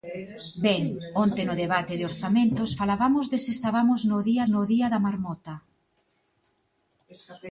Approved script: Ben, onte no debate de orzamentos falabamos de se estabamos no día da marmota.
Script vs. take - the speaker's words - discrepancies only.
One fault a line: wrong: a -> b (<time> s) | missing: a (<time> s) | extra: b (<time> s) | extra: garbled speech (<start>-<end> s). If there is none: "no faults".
extra: no día (4.5 s)